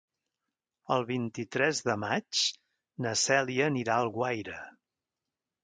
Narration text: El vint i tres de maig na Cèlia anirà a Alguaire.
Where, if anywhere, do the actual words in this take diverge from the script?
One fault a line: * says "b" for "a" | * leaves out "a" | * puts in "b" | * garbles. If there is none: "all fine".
all fine